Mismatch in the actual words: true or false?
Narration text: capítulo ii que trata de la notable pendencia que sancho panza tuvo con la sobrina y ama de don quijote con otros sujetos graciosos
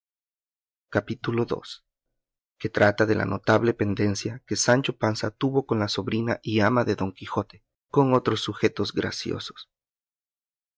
false